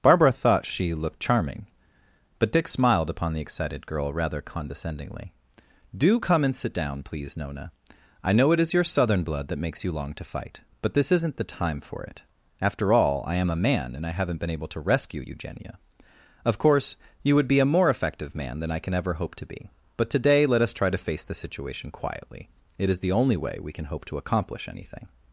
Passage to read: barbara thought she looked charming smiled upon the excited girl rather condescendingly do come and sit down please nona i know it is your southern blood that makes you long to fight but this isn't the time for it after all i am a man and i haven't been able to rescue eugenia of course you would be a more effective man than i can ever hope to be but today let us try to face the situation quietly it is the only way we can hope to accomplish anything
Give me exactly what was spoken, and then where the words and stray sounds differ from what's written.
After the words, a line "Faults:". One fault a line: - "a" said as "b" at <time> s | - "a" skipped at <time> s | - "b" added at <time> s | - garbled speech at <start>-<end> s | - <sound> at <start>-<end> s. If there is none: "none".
barbara thought she looked charming but dick smiled upon the excited girl rather condescendingly do come and sit down please nona i know it is your southern blood that makes you long to fight but this isn't the time for it after all i am a man and i haven't been able to rescue eugenia of course you would be a more effective man than i can ever hope to be but today let us try to face the situation quietly it is the only way we can hope to accomplish anything
Faults:
- "but dick" added at 2.4 s